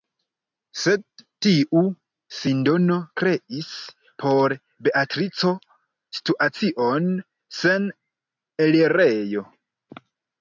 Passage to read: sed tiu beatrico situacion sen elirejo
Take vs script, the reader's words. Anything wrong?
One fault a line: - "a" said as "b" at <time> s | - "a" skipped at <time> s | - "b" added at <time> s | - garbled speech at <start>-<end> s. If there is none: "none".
- "sindono kreis por" added at 2.4 s